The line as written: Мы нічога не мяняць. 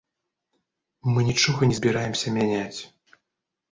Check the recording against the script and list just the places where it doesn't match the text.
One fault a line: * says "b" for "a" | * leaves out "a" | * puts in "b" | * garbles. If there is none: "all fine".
* puts in "збіраемся"